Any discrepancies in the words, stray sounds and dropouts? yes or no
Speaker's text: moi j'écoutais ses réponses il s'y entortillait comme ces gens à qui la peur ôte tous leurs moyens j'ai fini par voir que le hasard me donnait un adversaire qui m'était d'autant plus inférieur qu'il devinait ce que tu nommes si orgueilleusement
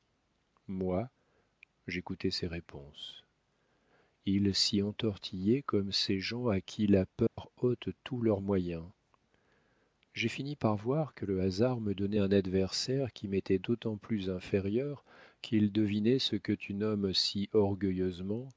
yes